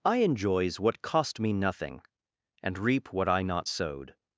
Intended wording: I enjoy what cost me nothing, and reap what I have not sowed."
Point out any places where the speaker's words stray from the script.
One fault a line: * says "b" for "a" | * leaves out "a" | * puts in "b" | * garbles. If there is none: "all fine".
* says "enjoys" for "enjoy"
* leaves out "have"